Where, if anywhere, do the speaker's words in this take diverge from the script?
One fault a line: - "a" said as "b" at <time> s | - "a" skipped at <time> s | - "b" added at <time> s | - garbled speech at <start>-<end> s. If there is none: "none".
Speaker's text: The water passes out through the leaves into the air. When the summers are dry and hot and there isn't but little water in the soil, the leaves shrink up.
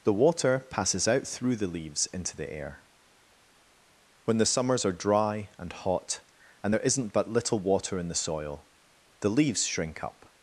none